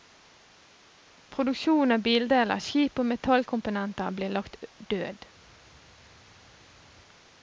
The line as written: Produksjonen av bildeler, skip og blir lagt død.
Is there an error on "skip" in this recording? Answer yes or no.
no